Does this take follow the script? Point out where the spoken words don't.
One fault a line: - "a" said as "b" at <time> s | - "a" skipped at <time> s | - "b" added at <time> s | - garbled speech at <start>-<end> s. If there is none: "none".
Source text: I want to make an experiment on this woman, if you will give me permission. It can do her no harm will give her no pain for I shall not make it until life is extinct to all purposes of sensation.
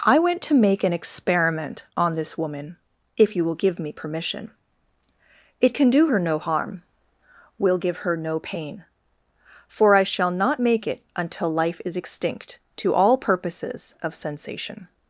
- "want" said as "went" at 0.2 s